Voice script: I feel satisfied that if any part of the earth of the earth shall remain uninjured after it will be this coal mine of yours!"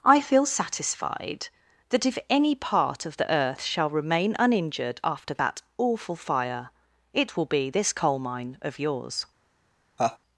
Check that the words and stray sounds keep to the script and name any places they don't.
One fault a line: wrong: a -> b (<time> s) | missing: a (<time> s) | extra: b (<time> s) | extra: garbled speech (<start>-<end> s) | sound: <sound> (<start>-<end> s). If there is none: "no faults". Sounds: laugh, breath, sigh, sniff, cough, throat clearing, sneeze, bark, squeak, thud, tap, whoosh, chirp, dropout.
missing: of the earth (3.6 s)
extra: that awful fire (5.3 s)
sound: laugh (10.0-10.2 s)